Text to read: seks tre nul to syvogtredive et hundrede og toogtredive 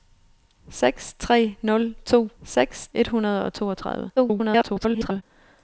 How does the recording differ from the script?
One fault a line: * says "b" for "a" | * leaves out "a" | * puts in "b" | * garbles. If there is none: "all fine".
* says "seks" for "syvogtredive"
* garbles